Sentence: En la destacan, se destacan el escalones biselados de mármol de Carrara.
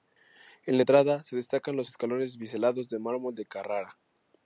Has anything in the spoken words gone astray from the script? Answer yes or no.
yes